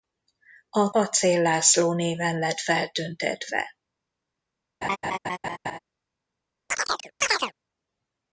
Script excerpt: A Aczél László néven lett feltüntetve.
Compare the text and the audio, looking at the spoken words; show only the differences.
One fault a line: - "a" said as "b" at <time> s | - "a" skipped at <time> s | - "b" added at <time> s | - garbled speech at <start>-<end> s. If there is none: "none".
none